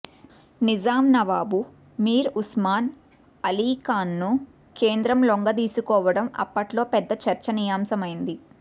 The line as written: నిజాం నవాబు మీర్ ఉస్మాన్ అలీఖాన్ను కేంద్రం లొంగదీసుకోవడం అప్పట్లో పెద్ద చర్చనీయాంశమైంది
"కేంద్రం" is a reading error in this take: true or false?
false